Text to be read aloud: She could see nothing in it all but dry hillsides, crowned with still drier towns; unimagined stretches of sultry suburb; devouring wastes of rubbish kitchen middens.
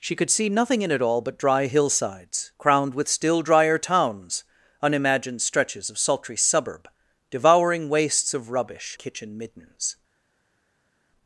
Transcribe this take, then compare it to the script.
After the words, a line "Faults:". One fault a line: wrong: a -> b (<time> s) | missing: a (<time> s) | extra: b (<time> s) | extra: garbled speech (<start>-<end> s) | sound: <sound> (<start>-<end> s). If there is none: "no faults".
She could see nothing in it all but dry hillsides, crowned with still drier towns; unimagined stretches of sultry suburb; devouring wastes of rubbish kitchen middens.
Faults:
no faults